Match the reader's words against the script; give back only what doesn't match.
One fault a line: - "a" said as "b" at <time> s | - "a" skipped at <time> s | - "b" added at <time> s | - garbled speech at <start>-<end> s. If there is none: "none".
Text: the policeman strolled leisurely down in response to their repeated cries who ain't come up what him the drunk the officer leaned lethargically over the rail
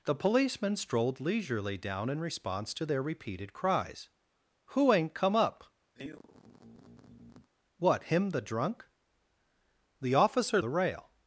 - "leaned lethargically over" skipped at 10.6 s